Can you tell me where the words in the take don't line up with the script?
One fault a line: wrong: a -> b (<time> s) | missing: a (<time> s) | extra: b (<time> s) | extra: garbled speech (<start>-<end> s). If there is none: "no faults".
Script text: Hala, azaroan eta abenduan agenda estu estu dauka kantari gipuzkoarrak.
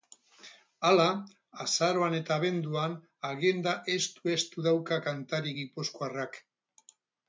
no faults